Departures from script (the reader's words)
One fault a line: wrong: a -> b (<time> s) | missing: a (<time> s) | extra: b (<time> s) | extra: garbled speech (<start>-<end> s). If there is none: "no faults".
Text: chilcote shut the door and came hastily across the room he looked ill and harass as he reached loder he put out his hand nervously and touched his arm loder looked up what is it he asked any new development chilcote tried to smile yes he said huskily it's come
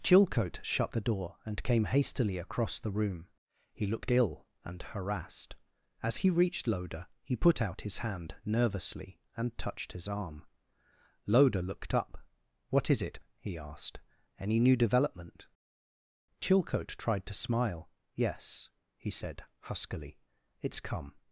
wrong: harass -> harassed (4.8 s)